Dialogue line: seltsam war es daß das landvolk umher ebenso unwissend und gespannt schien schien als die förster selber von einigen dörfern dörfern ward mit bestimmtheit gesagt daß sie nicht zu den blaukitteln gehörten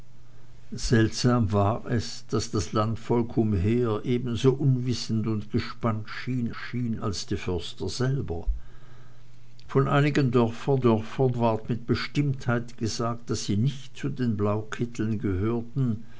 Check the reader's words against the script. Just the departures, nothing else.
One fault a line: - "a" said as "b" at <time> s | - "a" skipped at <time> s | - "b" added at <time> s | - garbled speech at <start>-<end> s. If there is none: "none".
none